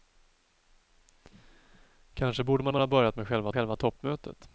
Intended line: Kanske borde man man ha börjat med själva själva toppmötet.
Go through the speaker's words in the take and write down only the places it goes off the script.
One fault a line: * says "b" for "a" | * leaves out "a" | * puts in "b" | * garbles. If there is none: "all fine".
all fine